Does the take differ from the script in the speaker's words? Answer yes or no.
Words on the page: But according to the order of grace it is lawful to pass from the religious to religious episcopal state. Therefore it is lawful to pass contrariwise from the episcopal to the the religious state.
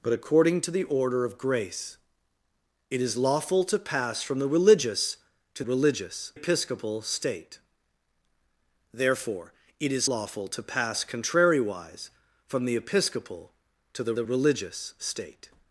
no